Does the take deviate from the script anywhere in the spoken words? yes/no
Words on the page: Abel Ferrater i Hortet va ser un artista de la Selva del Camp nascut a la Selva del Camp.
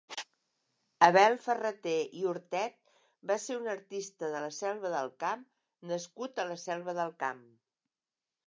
no